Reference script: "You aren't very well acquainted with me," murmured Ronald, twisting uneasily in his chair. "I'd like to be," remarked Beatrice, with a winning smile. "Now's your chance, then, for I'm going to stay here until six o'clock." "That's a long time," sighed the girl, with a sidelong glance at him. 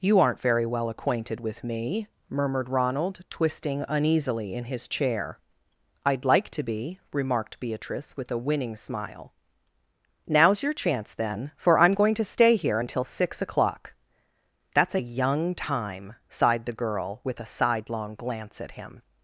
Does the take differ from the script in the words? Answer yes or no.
yes